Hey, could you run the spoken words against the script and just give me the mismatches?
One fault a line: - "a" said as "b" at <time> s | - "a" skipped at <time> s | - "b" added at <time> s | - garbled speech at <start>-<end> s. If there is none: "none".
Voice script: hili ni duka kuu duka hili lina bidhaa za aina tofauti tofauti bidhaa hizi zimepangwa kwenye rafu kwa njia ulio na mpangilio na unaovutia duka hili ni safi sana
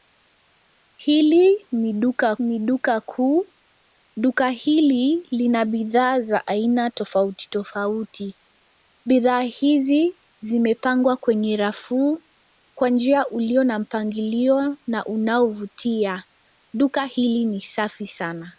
- "ni duka" added at 2.4 s